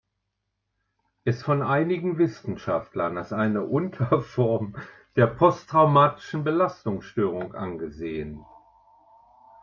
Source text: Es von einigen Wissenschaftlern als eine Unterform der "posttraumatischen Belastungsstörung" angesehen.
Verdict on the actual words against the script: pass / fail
pass